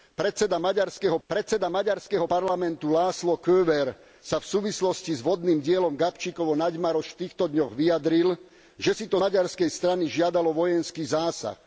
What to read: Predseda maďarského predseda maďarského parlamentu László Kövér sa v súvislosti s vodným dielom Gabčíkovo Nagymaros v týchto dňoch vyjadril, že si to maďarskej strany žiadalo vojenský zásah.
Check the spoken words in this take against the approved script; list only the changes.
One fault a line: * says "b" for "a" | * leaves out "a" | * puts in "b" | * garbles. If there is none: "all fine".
all fine